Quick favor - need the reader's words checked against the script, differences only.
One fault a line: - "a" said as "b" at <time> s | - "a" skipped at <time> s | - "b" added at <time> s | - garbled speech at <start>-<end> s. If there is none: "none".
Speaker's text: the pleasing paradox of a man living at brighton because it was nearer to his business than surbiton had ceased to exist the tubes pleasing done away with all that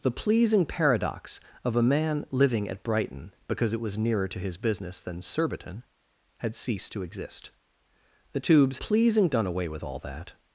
none